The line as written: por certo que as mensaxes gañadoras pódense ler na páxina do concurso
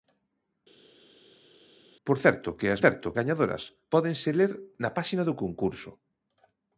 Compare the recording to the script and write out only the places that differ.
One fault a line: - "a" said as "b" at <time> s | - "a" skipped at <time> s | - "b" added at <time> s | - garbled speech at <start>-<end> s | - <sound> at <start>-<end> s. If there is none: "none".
- "mensaxes" said as "certo" at 2.8 s